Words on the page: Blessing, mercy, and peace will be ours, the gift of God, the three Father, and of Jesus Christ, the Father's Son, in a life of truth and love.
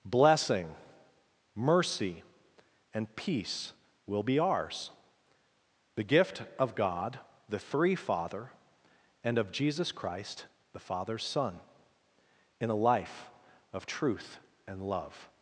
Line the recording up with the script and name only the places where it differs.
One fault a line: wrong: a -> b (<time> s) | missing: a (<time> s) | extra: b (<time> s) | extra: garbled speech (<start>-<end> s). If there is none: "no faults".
no faults